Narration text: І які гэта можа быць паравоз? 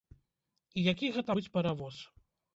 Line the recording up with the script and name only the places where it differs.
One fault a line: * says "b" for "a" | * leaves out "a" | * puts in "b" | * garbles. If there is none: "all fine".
* leaves out "можа"